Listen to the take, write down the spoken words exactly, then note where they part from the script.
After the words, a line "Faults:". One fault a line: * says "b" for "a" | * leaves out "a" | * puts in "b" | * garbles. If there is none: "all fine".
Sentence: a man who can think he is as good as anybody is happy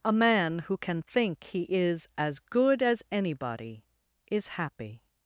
a man who can think he is as good as anybody is happy
Faults:
all fine